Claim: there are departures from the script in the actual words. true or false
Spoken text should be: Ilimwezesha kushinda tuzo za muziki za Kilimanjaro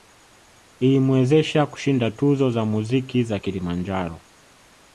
false